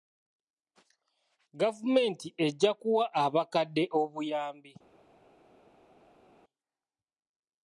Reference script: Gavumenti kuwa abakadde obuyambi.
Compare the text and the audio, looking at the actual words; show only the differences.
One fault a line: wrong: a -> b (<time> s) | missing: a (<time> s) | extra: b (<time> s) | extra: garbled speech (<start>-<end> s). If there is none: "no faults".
extra: ejja (2.5 s)